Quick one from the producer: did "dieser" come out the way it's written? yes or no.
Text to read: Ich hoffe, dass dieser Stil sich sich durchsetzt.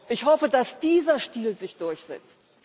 yes